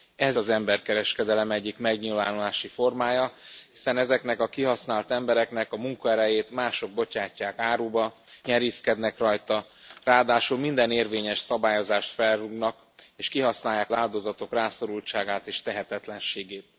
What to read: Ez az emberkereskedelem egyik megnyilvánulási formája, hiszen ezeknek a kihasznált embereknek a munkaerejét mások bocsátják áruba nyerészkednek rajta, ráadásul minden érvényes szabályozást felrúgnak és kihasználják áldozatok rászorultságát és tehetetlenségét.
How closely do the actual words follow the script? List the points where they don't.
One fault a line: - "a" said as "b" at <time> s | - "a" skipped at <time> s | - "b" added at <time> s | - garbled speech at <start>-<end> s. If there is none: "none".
none